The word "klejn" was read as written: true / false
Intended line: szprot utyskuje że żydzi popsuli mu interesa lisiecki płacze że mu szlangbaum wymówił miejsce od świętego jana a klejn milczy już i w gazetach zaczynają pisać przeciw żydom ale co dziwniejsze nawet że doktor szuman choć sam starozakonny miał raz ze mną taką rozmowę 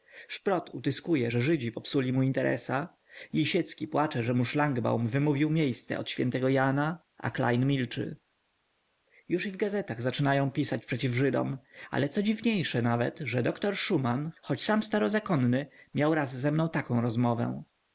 true